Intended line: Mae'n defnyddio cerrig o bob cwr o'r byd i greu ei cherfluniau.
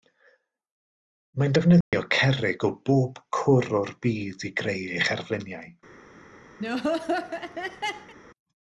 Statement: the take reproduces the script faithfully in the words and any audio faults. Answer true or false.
false